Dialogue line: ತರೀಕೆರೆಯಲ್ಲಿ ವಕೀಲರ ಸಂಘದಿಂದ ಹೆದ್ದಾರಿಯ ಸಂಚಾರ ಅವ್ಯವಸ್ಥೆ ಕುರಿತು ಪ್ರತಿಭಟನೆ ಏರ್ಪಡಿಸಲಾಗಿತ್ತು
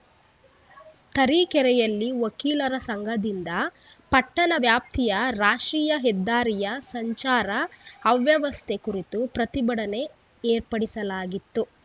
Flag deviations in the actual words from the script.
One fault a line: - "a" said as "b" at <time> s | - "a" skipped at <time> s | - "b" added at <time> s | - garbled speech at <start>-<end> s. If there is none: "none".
- "ಪಟ್ಟಣ ವ್ಯಾಪ್ತಿಯ ರಾಷ್ಟ್ರೀಯ" added at 4.1 s